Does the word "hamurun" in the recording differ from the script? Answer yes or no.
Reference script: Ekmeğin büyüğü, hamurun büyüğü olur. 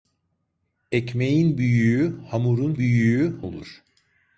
no